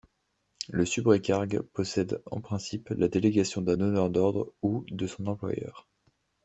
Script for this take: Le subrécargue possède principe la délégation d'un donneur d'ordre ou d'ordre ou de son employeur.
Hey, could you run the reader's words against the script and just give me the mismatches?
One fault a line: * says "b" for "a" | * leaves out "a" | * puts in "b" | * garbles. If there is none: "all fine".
* puts in "en"
* leaves out "d'ordre ou"